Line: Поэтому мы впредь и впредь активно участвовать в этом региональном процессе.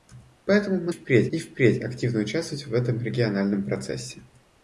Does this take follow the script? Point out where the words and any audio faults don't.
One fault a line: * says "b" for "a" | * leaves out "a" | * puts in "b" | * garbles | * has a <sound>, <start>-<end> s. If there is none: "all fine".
all fine